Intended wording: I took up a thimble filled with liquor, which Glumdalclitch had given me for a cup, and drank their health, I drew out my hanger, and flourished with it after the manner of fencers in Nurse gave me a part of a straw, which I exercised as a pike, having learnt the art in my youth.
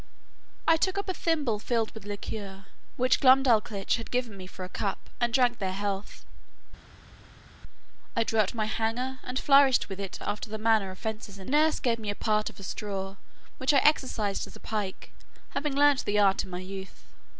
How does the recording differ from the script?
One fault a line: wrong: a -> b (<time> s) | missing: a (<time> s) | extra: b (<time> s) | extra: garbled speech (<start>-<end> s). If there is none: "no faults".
no faults